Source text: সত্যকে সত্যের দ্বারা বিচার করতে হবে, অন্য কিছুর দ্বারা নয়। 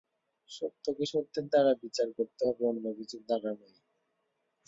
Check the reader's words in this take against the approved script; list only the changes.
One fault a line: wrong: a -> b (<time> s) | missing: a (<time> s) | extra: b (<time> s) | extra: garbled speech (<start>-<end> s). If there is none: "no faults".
no faults